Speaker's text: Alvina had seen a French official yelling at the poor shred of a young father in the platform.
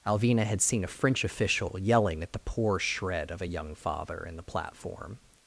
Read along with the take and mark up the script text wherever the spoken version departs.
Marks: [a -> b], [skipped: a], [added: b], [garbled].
Alvina had seen a French official yelling at the poor shred of a young father in the platform.